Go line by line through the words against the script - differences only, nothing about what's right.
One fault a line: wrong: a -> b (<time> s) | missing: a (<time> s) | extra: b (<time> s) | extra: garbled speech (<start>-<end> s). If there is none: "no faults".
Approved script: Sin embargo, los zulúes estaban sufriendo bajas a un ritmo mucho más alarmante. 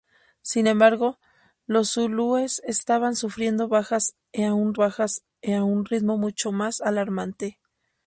extra: bajas a un (4.7 s)